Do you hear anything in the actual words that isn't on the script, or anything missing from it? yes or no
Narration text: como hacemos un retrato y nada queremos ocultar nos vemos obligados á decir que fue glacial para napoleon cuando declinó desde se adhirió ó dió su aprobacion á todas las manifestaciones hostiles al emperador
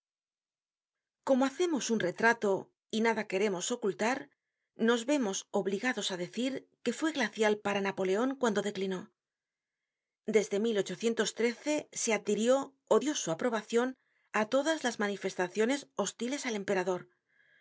no